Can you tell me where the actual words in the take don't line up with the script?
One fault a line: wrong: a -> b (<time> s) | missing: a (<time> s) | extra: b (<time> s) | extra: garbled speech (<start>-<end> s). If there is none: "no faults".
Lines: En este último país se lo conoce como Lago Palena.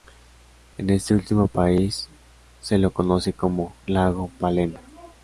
no faults